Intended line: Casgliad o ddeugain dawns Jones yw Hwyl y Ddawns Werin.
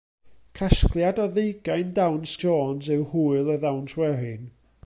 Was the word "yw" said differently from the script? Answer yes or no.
no